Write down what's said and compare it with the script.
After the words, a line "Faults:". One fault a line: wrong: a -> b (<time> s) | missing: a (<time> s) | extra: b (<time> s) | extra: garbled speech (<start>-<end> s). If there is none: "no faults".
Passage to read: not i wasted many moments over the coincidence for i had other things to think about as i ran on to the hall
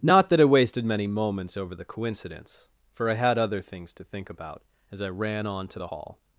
not that i wasted many moments over the coincidence for i had other things to think about as i ran on to the hall
Faults:
extra: that (0.3 s)